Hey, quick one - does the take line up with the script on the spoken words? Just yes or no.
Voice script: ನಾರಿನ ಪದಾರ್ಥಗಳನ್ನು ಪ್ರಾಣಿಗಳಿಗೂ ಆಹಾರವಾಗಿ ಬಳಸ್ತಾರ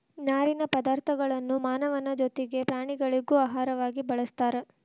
no